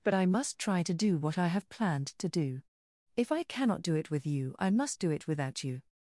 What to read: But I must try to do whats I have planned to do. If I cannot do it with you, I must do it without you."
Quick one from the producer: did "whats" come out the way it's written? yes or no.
no